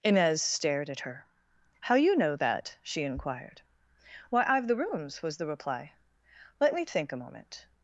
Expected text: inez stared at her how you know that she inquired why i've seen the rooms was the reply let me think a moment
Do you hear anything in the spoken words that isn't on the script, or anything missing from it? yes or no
yes